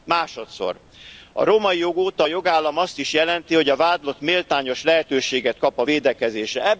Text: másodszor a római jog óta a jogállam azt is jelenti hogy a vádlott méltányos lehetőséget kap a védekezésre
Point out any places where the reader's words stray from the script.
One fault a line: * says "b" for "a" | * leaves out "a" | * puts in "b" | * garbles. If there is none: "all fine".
all fine